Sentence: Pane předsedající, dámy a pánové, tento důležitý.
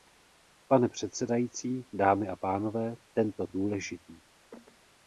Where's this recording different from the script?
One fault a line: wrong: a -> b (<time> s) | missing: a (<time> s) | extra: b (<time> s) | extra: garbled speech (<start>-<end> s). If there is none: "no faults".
no faults